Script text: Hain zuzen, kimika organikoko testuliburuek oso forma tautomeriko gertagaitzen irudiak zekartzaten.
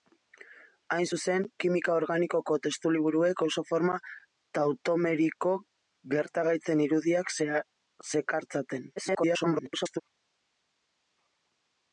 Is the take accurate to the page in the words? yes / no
no